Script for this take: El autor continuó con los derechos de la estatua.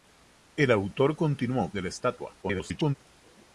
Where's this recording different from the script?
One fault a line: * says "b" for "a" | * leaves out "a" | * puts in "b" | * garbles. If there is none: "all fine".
* leaves out "con los derechos"
* garbles